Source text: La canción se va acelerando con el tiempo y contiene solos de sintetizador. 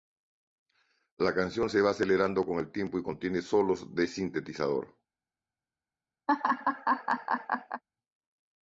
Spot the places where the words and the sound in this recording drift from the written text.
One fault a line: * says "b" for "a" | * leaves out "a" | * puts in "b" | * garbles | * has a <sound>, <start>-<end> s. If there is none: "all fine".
* has a laugh, 6.3-7.8 s